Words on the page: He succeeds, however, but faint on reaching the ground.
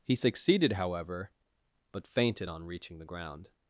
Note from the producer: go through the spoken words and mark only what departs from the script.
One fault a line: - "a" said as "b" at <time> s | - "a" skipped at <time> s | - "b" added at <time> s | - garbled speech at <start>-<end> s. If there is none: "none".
- "succeeds" said as "succeeded" at 0.1 s
- "faint" said as "fainted" at 2.1 s